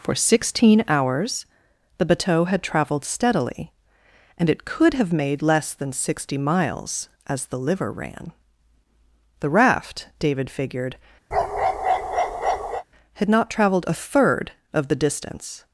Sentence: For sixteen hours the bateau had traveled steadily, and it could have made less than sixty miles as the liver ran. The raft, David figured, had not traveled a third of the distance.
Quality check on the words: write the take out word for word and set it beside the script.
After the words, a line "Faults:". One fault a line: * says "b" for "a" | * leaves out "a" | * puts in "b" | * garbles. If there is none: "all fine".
For sixteen hours the bateau had traveled steadily, and it could have made less than sixty miles as the liver ran. The raft, David figured, had not traveled a third of the distance.
Faults:
all fine